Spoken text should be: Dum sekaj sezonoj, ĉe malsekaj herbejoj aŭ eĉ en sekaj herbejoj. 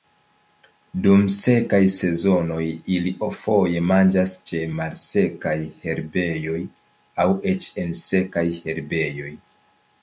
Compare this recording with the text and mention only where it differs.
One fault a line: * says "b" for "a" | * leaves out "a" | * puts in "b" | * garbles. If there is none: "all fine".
* puts in "ili foje manĝas"